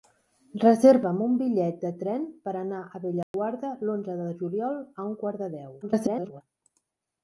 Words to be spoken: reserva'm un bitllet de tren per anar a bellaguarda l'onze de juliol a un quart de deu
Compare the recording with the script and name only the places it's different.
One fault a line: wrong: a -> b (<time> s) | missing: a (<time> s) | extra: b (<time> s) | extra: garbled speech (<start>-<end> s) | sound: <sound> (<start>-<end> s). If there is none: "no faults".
sound: dropout (3.2-3.3 s)
extra: garbled speech (5.8-6.4 s)